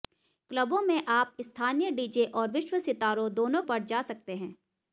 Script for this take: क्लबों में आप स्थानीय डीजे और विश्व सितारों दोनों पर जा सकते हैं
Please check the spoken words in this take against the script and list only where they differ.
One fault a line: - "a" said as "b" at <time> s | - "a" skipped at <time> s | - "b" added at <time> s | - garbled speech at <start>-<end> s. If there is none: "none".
none